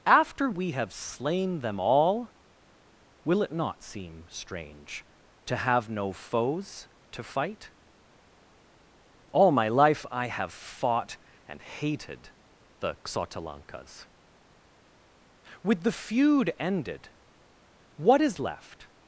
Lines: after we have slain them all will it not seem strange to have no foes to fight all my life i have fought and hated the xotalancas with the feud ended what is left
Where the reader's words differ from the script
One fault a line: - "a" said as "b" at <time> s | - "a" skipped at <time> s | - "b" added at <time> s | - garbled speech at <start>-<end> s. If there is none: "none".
none